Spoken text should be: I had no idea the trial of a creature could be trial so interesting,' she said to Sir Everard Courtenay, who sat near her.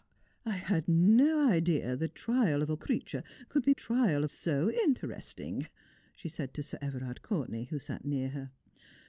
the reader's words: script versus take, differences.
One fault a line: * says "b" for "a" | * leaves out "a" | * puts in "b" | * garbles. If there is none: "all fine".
all fine